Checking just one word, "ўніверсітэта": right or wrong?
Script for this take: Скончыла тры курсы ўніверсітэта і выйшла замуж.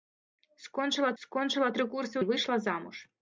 wrong